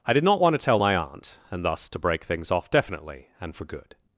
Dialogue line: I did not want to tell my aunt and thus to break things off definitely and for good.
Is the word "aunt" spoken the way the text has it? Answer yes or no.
yes